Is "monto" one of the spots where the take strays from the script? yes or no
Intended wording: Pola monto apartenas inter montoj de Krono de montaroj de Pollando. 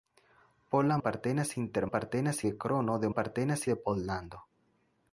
yes